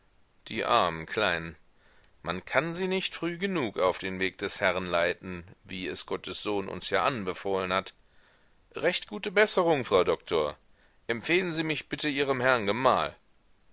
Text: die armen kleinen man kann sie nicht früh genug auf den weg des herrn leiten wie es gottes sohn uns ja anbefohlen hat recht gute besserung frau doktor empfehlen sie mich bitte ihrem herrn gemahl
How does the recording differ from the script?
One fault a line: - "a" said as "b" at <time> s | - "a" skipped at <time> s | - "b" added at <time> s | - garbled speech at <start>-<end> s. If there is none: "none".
none